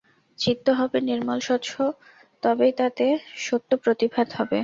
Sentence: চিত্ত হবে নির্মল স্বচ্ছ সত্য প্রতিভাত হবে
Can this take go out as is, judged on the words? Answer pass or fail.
fail